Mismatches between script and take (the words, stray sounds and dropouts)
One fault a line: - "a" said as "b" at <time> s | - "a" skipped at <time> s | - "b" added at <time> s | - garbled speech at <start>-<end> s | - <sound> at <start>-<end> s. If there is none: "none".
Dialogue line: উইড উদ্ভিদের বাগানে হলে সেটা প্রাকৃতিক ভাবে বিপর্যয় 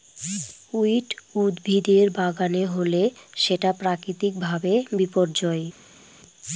none